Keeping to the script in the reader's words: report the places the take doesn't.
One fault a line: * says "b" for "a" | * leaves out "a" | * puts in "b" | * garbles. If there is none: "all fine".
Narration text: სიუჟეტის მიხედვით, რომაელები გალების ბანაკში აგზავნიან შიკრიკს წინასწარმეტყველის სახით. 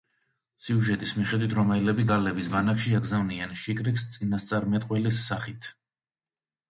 all fine